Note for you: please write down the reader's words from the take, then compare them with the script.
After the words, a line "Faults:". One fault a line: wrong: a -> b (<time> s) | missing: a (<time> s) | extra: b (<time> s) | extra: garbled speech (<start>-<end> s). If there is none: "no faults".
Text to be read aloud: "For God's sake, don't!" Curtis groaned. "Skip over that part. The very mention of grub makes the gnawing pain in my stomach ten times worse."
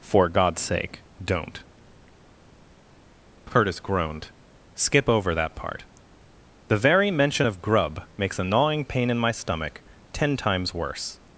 "For God's sake, don't!" Curtis groaned. "Skip over that part. The very mention of grub makes a gnawing pain in my stomach ten times worse."
Faults:
wrong: the -> a (8.4 s)